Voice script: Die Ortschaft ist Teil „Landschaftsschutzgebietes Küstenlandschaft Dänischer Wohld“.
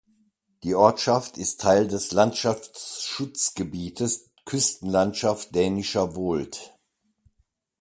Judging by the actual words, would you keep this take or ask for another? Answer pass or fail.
fail